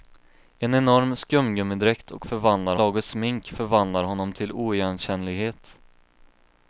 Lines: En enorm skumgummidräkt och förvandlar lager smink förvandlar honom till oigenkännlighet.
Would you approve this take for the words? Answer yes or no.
yes